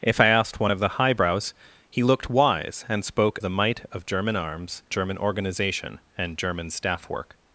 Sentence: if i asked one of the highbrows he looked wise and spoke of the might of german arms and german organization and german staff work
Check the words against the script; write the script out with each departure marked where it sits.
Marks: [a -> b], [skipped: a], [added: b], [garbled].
if i asked one of the highbrows he looked wise and spoke [skipped: of] the might of german arms [skipped: and] german organization and german staff work